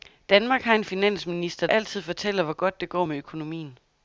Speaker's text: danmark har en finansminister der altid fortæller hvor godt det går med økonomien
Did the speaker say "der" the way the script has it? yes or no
no